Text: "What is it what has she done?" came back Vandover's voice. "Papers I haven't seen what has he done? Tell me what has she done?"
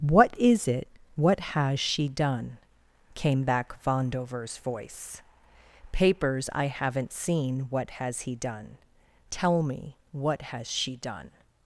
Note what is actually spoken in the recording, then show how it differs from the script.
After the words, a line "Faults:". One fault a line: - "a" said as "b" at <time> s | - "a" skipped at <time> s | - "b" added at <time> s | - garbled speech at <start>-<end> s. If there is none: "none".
"What is it what has she done?" came back Vandover's voice. "Papers I haven't seen what has he done? Tell me what has she done?"
Faults:
none